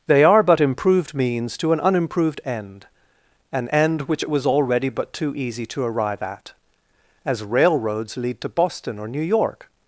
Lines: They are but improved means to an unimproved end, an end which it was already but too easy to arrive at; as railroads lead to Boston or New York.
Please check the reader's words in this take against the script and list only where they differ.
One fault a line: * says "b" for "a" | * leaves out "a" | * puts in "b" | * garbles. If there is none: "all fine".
all fine